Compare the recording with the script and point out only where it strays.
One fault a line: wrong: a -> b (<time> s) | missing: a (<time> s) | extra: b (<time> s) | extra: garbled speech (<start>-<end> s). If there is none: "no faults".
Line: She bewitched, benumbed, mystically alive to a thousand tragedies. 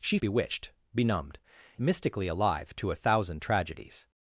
no faults